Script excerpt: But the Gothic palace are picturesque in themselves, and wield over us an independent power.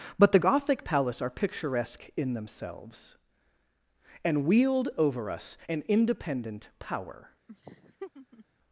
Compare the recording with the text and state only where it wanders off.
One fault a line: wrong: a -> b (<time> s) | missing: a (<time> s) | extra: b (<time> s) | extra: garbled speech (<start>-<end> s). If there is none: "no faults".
no faults